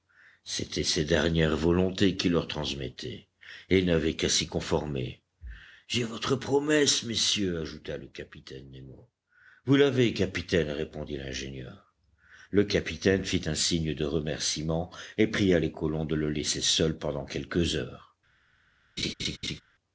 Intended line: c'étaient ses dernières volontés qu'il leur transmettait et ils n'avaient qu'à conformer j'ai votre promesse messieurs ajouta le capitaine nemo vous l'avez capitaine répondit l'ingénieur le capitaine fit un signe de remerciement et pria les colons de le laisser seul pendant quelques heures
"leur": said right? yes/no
yes